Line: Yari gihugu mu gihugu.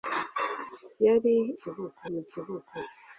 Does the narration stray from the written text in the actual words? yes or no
no